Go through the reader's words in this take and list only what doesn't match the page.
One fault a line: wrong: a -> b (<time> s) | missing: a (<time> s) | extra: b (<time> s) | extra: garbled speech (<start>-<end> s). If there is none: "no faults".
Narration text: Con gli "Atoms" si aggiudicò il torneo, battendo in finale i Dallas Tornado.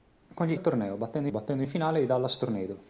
missing: Atoms si aggiudicò (0.6 s)
extra: battendo (1.3 s)